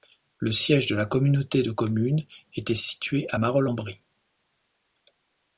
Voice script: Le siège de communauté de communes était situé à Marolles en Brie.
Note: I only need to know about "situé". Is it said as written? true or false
true